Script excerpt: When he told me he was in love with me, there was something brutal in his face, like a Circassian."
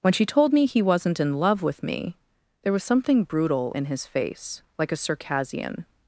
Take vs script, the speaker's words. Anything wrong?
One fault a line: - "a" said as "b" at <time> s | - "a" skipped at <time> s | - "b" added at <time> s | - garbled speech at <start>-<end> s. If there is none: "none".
- "he" said as "she" at 0.1 s
- "was" said as "wasn't" at 0.8 s